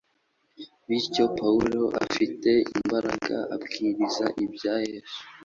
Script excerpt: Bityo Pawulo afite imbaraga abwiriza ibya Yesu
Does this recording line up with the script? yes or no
yes